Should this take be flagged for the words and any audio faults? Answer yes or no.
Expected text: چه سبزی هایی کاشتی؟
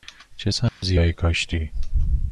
yes